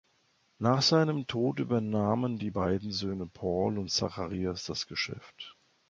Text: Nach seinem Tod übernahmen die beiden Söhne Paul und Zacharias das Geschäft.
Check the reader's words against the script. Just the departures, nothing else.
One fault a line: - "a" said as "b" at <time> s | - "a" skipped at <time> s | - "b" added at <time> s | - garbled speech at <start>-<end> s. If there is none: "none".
none